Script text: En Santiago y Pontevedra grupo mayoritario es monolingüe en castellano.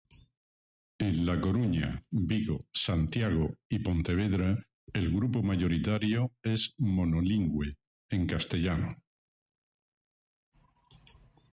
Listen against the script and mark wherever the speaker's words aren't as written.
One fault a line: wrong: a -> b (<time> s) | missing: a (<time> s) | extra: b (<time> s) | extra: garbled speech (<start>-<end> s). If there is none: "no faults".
extra: La Coruña Vigo (1.3 s)
extra: el (4.9 s)